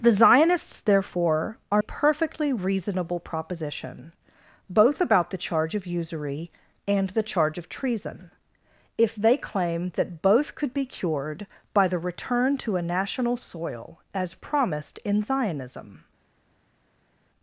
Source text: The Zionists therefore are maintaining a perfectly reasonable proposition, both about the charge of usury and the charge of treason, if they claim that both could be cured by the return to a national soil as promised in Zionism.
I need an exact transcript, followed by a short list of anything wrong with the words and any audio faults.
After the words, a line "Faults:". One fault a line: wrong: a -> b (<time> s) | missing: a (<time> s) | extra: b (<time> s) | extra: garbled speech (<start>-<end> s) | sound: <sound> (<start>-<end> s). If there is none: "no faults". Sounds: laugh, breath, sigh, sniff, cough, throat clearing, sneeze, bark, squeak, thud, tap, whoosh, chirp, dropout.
The Zionists therefore are perfectly reasonable proposition, both about the charge of usury and the charge of treason, if they claim that both could be cured by the return to a national soil as promised in Zionism.
Faults:
missing: maintaining a (1.8 s)